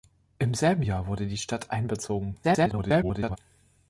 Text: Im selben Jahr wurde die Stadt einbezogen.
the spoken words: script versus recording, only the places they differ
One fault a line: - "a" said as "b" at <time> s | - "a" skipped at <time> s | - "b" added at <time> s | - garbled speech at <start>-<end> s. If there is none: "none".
- garbled speech at 2.4-3.4 s